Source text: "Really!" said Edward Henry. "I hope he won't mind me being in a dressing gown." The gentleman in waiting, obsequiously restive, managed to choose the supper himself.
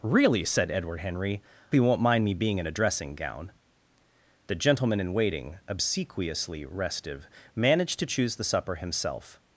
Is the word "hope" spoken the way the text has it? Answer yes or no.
no